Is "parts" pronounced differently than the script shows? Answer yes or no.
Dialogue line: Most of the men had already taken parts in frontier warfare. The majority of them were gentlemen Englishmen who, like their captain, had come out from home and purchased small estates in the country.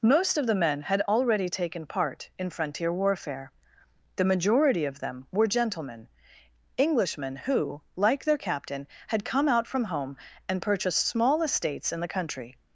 yes